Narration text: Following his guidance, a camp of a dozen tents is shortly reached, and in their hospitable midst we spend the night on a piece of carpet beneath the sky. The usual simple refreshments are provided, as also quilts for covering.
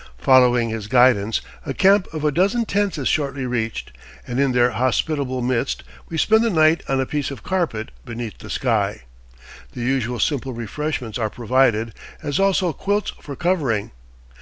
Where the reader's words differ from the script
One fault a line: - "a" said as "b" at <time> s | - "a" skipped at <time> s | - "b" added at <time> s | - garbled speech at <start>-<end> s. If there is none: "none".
none